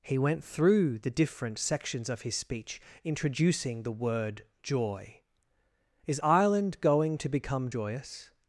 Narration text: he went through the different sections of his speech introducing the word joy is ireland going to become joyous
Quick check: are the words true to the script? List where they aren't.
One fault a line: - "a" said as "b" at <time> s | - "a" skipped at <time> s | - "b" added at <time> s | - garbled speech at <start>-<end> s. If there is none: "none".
none